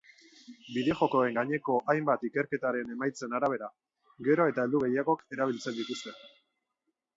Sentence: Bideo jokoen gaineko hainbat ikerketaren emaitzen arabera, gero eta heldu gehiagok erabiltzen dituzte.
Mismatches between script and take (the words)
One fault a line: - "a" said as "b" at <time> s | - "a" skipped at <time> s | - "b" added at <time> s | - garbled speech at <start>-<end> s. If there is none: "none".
none